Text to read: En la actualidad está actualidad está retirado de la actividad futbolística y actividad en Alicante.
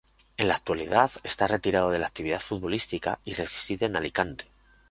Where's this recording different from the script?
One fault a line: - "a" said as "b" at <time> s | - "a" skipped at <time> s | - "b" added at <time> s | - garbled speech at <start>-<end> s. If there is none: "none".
- "actualidad está" skipped at 1.4 s
- "actividad" said as "reside" at 3.3 s